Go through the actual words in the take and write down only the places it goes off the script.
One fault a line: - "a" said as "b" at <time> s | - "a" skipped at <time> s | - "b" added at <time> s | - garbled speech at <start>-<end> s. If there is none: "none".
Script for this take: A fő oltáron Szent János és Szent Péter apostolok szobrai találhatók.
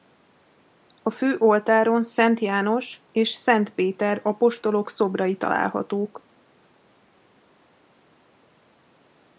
none